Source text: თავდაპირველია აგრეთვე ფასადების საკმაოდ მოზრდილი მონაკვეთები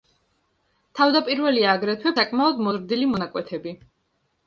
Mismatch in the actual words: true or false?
true